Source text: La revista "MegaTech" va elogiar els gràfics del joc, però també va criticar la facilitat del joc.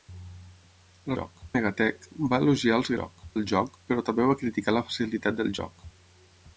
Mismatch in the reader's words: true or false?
true